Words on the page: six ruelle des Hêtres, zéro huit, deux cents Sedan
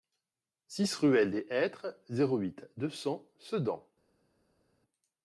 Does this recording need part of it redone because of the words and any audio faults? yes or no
no